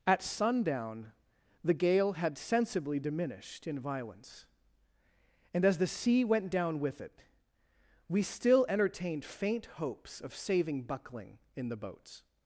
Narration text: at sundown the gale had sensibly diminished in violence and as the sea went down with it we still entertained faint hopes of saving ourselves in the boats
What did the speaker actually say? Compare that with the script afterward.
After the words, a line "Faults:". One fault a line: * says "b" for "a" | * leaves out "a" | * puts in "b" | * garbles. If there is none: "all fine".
at sundown the gale had sensibly diminished in violence and as the sea went down with it we still entertained faint hopes of saving buckling in the boats
Faults:
* says "buckling" for "ourselves"